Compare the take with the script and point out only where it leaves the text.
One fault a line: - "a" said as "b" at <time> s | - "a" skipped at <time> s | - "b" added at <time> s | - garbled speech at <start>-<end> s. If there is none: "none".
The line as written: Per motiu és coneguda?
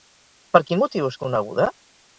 - "quin" added at 0.7 s